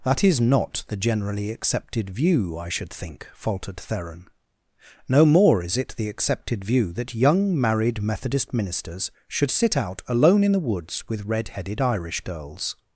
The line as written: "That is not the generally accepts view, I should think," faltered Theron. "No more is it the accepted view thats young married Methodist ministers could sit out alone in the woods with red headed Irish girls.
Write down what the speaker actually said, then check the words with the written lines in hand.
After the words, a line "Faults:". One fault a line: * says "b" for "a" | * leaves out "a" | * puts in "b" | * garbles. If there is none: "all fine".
"That is not the generally accepted view, I should think," faltered Theron. "No more is it the accepted view that young married Methodist ministers should sit out alone in the woods with red headed Irish girls.
Faults:
* says "accepted" for "accepts"
* says "that" for "thats"
* says "should" for "could"